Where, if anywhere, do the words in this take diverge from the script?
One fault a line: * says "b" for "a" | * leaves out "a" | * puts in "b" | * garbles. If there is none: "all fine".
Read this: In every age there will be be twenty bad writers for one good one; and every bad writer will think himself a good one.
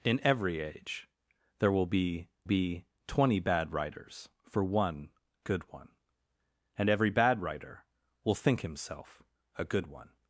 all fine